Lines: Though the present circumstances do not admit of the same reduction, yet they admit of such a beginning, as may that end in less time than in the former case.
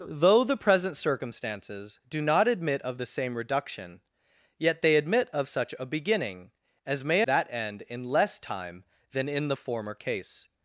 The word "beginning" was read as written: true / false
true